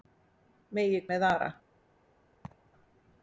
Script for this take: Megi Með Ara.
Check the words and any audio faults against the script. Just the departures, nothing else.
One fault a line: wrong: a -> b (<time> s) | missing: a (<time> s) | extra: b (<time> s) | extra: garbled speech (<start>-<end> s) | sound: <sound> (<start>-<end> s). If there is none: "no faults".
sound: laugh (2.4-2.7 s)